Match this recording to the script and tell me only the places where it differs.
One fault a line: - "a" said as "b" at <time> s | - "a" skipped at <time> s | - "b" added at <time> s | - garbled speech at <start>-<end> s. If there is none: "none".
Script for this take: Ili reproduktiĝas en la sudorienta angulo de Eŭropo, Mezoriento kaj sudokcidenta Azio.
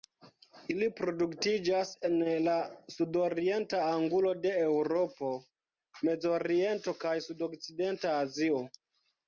none